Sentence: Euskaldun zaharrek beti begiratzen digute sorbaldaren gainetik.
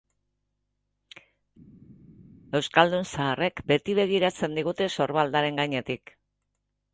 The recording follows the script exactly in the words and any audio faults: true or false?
true